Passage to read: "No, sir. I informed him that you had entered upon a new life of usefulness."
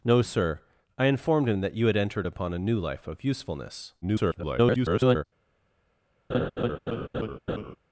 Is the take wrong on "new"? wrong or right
right